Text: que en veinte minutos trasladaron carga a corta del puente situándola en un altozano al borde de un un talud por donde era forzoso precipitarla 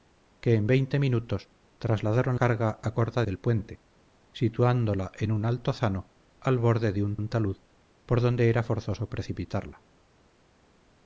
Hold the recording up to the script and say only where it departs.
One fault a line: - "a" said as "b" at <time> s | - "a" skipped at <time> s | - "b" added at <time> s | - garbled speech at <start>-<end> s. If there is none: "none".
none